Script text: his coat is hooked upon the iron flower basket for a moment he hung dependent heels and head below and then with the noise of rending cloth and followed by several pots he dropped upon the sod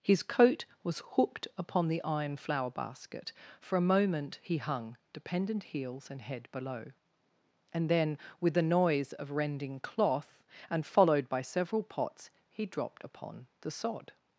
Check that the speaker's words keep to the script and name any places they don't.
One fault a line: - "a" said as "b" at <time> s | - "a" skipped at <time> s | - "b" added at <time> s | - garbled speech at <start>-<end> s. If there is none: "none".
- "is" said as "was" at 0.8 s